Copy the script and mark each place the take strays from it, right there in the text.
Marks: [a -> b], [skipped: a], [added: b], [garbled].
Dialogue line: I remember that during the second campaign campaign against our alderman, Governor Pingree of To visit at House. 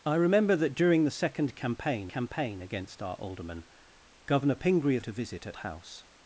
I remember that during the second campaign campaign against our alderman, Governor Pingree of To visit at House.